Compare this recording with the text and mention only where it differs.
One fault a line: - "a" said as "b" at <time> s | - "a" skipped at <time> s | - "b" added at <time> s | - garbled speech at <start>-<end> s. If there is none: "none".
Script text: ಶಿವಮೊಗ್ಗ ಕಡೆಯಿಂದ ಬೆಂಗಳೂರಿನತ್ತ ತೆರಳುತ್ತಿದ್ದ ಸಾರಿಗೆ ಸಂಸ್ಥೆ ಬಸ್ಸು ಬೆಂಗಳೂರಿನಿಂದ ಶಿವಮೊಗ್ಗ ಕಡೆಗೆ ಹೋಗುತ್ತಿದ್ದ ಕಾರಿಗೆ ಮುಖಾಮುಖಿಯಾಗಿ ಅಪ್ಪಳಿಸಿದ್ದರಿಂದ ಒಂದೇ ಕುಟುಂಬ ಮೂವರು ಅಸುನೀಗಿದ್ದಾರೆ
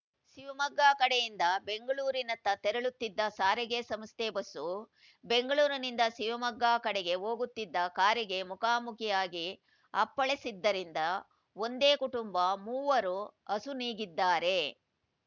none